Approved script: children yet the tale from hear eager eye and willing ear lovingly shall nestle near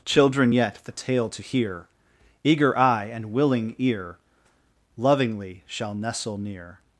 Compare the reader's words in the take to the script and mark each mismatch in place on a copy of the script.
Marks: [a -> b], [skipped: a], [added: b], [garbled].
children yet the tale [from -> to] hear eager eye and willing ear lovingly shall nestle near